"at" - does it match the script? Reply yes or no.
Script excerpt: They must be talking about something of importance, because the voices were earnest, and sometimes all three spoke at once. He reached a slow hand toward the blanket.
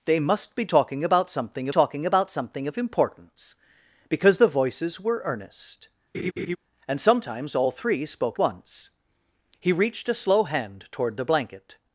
no